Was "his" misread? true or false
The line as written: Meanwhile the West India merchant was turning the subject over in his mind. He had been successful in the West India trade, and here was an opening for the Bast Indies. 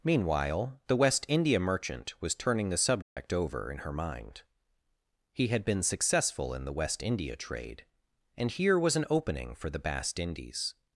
true